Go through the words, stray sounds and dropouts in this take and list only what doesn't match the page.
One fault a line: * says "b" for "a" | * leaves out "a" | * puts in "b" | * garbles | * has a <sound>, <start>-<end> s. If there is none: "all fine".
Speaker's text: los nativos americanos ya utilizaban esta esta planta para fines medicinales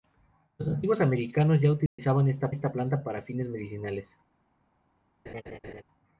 * has a dropout, 1.9-2.0 s
* has a laugh, 5.3-5.8 s